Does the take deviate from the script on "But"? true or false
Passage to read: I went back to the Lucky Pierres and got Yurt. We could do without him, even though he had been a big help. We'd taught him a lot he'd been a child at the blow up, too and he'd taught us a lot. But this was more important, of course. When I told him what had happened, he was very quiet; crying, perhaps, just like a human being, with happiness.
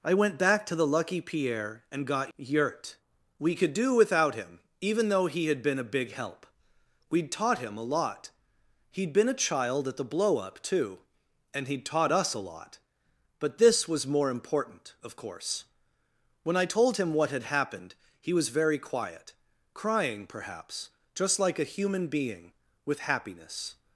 false